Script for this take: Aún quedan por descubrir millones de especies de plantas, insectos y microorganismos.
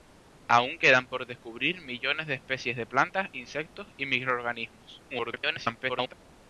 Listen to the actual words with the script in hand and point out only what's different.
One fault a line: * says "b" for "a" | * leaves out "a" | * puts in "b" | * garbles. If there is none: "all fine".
* garbles